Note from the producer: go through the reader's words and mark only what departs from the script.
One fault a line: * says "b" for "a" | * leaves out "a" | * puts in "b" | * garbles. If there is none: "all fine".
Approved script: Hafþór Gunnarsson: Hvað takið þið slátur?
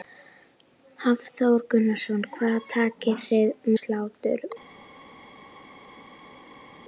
all fine